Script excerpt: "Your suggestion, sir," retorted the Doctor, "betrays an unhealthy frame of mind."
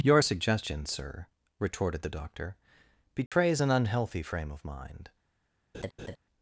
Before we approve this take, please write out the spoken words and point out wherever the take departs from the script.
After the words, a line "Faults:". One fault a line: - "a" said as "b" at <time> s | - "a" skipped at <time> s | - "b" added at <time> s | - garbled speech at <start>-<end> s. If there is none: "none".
"Your suggestion, sir," retorted the Doctor, "betrays an unhealthy frame of mind."
Faults:
none